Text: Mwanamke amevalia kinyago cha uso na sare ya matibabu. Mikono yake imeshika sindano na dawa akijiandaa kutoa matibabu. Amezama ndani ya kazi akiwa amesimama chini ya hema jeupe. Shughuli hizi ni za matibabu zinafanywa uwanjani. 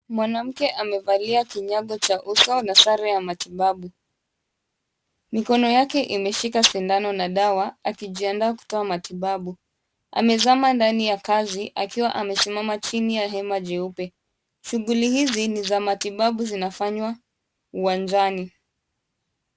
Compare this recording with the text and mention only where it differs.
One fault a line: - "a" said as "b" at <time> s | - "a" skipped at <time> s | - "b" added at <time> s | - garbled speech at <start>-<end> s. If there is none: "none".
none